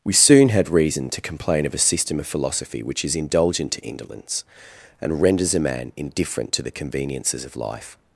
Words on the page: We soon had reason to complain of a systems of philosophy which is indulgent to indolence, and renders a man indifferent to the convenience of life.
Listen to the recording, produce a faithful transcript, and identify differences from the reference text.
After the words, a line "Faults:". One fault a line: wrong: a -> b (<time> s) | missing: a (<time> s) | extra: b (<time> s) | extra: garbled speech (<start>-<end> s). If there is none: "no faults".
We soon had reason to complain of a system of philosophy which is indulgent to indolence, and renders a man indifferent to the conveniences of life.
Faults:
wrong: systems -> system (1.9 s)
wrong: convenience -> conveniences (6.7 s)